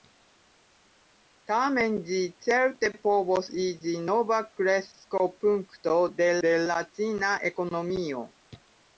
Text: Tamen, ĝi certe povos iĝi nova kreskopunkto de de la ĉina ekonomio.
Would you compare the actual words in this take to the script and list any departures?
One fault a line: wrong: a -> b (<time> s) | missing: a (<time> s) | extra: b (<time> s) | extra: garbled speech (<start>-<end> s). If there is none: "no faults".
no faults